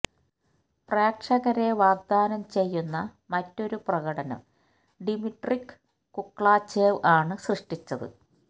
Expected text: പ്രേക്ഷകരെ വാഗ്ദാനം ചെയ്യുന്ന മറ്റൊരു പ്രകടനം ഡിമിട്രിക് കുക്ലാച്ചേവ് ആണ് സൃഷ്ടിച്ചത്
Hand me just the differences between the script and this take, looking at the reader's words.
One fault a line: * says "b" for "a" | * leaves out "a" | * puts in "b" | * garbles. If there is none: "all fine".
all fine